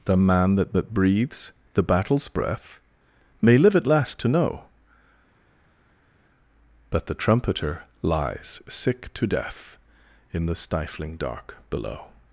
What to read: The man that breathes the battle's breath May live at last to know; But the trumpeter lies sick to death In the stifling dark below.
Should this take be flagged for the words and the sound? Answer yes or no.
yes